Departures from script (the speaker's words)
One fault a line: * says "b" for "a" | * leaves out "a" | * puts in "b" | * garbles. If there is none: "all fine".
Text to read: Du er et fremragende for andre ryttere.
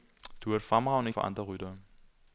all fine